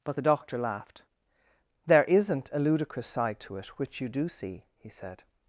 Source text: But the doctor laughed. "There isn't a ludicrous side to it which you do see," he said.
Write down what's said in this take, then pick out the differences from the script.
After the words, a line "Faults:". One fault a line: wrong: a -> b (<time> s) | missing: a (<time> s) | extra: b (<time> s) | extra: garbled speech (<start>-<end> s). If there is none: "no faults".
But the doctor laughed. "There isn't a ludicrous side to it which you do see," he said.
Faults:
no faults